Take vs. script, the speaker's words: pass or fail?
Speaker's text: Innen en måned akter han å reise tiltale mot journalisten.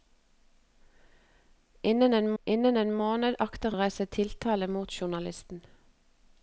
fail